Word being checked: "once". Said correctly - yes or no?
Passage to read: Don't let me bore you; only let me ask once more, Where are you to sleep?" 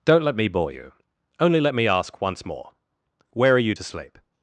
yes